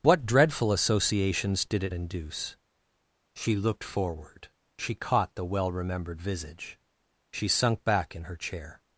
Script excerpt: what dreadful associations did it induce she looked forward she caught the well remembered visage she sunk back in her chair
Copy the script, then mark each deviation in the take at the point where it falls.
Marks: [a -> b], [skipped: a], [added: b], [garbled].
what dreadful associations did it induce she looked forward she caught the well remembered visage she sunk back in her chair